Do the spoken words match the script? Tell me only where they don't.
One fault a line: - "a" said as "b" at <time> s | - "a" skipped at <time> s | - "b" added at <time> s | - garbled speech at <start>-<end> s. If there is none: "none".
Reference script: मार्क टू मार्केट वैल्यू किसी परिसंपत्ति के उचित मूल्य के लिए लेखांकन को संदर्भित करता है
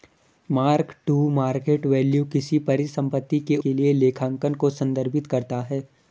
- "उचित मूल्य" skipped at 3.6 s